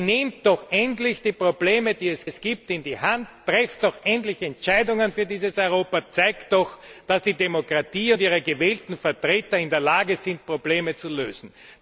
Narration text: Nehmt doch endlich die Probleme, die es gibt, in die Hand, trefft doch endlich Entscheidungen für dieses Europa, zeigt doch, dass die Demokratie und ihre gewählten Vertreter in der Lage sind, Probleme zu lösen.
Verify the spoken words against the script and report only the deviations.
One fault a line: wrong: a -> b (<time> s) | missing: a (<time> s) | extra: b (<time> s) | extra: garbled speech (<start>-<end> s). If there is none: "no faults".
extra: es (2.2 s)